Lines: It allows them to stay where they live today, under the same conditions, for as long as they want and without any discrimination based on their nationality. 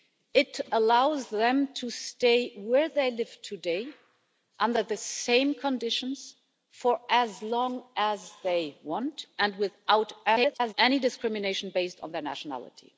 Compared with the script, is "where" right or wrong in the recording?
right